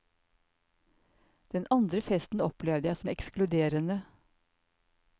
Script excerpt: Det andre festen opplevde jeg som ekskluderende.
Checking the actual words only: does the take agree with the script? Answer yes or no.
no